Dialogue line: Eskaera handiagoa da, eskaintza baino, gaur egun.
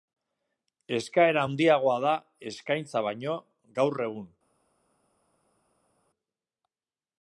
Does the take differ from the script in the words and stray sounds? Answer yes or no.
no